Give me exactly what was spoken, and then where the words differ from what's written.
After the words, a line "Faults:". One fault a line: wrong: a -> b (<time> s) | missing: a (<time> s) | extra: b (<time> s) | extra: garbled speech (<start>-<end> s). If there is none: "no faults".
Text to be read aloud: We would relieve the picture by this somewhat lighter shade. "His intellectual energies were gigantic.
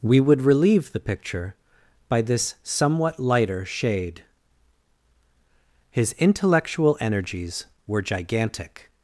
We would relieve the picture by this somewhat lighter shade. "His intellectual energies were gigantic.
Faults:
no faults